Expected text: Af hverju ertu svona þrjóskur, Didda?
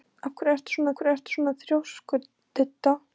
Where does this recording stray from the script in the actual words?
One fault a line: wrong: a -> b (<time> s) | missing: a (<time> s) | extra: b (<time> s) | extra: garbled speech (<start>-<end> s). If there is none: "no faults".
extra: hverju ertu svona (1.0 s)